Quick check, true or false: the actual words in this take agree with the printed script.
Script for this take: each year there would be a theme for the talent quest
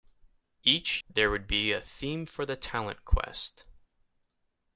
false